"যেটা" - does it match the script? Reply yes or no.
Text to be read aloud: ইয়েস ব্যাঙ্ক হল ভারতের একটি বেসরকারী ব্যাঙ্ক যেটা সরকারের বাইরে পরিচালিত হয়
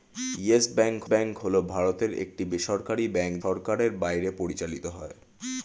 no